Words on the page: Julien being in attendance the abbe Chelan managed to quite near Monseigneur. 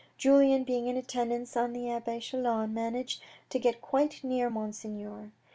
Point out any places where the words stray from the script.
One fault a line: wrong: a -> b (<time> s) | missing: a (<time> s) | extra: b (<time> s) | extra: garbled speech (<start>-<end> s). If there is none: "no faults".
extra: on (1.6 s)
extra: get (3.6 s)